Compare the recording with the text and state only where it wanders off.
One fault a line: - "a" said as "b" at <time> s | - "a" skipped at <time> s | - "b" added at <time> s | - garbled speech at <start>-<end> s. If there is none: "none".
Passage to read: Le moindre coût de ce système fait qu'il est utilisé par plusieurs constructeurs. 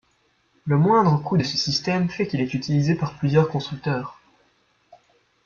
none